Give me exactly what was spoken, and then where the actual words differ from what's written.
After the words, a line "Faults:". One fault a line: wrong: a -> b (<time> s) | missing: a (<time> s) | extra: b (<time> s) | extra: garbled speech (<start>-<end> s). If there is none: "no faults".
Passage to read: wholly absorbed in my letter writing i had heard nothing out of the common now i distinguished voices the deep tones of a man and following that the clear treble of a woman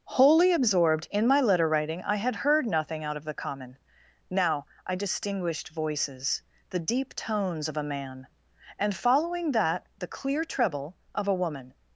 wholly absorbed in my letter writing i had heard nothing out of the common now i distinguished voices the deep tones of a man and following that the clear treble of a woman
Faults:
no faults